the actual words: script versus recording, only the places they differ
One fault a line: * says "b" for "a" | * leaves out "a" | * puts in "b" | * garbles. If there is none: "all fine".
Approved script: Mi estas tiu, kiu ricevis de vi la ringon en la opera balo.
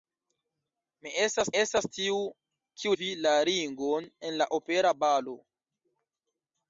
* puts in "estas"
* leaves out "ricevis de"